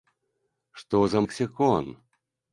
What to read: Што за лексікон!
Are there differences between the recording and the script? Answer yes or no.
no